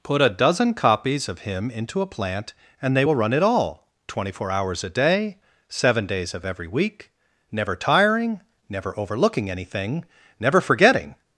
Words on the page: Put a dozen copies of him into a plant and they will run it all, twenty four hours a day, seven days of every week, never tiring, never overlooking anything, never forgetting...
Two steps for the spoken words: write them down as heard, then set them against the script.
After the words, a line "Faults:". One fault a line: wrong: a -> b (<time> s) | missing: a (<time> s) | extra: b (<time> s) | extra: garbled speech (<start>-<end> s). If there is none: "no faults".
Put a dozen copies of him into a plant and they will run it all, twenty four hours a day, seven days of every week, never tiring, never overlooking anything, never forgetting...
Faults:
no faults